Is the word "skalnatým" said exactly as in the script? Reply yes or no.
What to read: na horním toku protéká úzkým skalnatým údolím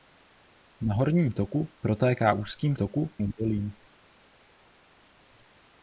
no